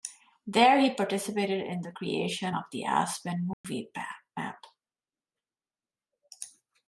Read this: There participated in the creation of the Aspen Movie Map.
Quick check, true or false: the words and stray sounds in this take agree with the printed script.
false